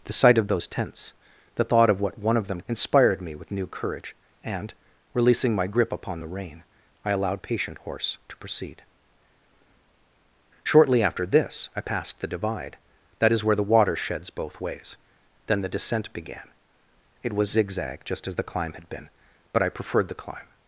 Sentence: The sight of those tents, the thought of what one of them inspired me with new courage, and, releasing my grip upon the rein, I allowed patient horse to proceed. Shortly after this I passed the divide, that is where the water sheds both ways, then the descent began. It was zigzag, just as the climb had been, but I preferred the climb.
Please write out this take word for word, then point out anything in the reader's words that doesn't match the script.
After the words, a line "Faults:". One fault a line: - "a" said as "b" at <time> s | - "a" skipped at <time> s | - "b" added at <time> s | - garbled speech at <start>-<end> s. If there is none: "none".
The sight of those tents, the thought of what one of them inspired me with new courage, and, releasing my grip upon the rein, I allowed patient horse to proceed. Shortly after this I passed the divide, that is where the water sheds both ways, then the descent began. It was zigzag, just as the climb had been, but I preferred the climb.
Faults:
none